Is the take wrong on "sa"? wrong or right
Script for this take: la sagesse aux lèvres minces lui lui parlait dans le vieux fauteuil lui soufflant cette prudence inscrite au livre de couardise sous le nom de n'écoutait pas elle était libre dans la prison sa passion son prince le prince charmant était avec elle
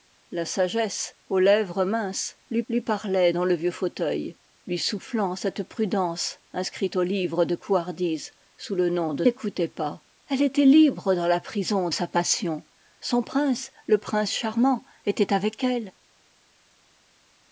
right